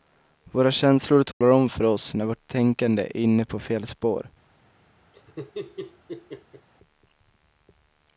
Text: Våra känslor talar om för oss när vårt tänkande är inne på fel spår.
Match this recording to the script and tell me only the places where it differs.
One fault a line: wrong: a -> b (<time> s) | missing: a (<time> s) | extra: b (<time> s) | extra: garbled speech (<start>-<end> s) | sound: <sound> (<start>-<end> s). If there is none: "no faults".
sound: dropout (1.3-1.4 s)
sound: laugh (5.1-6.7 s)